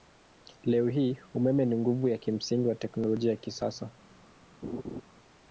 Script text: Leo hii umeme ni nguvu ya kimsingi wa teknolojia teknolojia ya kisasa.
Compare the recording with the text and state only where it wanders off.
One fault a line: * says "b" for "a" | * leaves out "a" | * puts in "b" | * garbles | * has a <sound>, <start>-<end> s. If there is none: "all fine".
* leaves out "teknolojia"
* has a laugh, 4.6-5.0 s